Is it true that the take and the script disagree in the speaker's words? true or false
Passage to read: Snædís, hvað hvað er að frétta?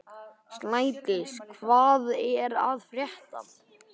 true